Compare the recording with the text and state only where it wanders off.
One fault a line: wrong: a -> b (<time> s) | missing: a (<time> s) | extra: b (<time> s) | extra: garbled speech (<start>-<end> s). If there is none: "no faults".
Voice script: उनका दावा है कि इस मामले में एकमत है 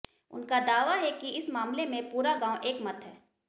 extra: पूरा गांव (2.1 s)